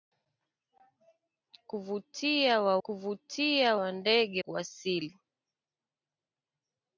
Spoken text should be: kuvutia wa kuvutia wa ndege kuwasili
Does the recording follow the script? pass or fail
pass